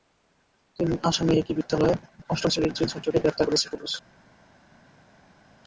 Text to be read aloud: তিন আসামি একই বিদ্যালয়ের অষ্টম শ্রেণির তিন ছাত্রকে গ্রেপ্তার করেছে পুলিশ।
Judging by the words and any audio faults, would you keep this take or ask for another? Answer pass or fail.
pass